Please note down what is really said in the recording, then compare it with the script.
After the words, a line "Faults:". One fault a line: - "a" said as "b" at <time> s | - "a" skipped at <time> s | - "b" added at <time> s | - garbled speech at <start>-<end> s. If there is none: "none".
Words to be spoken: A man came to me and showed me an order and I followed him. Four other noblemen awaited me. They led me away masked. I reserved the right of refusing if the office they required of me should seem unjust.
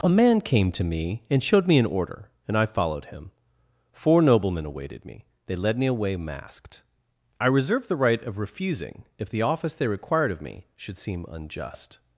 A man came to me and showed me an order and I followed him. Four noblemen awaited me. They led me away masked. I reserved the right of refusing if the office they required of me should seem unjust.
Faults:
- "other" skipped at 4.2 s